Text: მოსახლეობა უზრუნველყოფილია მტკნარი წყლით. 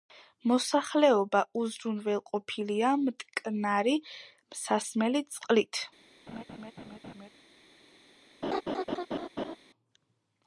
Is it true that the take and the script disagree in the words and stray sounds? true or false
true